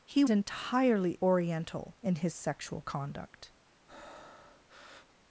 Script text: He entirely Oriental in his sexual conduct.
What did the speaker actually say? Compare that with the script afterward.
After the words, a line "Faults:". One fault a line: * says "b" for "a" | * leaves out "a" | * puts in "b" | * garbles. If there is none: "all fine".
He entirely Oriental in his sexual conduct.
Faults:
all fine